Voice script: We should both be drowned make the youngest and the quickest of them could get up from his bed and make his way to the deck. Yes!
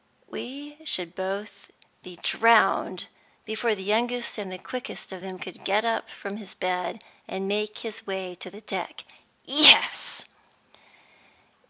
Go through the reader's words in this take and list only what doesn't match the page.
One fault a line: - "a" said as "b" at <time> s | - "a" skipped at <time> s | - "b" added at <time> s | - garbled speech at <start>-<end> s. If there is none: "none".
- "make" said as "before" at 3.5 s